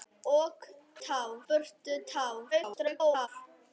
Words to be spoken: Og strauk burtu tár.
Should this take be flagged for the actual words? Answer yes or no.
yes